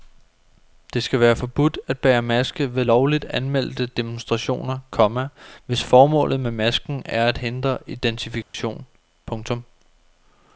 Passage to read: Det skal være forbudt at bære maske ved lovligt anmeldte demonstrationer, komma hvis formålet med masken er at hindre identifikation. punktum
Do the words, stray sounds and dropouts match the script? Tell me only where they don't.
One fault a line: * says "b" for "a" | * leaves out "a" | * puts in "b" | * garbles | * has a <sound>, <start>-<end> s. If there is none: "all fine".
* has a dropout, 8.4-8.5 s